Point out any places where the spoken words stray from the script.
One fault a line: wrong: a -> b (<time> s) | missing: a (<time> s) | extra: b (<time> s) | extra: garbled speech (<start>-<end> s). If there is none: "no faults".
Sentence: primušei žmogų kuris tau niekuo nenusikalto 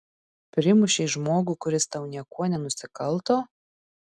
no faults